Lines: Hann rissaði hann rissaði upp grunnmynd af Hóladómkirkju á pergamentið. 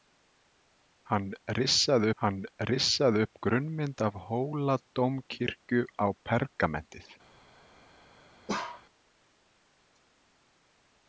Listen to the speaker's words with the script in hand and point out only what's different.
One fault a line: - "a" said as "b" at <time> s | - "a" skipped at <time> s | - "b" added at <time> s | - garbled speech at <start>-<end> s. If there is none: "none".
none